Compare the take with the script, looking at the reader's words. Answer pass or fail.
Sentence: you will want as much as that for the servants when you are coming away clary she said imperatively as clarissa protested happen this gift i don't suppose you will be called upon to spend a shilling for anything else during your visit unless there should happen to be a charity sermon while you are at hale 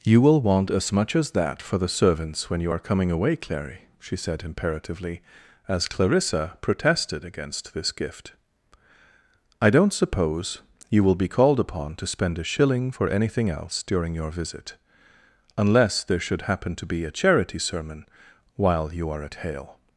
fail